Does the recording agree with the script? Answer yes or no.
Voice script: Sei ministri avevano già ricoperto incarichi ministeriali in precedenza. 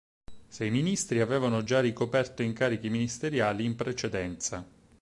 yes